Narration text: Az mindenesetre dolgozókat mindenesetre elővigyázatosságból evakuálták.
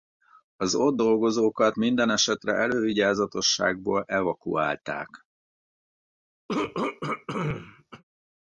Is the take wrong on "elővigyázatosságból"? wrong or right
right